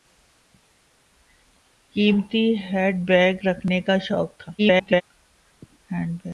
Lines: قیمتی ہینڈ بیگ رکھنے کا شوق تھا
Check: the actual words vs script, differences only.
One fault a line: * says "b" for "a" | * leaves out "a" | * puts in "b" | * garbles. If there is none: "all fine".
* garbles